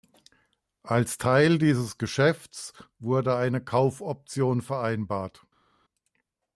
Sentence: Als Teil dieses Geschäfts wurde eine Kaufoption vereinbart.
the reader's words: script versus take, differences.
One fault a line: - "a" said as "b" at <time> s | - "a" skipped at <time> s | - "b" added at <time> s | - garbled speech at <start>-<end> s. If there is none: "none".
none